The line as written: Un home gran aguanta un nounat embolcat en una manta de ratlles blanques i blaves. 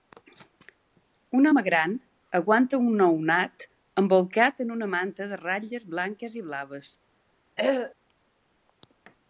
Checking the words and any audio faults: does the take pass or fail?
fail